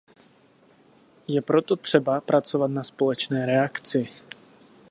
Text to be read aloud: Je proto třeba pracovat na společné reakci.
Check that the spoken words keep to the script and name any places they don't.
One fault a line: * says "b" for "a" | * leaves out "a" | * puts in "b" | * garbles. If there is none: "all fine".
all fine